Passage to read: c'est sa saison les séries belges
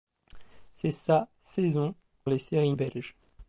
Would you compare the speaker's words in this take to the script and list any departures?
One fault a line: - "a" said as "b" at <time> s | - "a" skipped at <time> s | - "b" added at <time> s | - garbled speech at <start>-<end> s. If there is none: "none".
none